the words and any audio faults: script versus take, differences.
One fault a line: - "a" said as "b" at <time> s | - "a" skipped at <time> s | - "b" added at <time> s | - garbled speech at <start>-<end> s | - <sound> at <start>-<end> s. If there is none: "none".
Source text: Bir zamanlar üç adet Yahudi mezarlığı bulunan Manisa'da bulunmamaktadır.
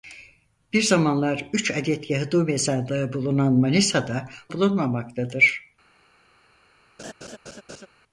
- laugh at 7.0-7.9 s